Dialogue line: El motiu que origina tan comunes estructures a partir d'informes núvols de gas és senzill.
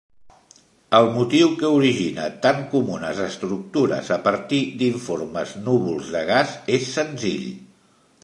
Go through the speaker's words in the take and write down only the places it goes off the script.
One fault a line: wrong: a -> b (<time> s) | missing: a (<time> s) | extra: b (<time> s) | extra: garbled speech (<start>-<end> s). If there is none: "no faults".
no faults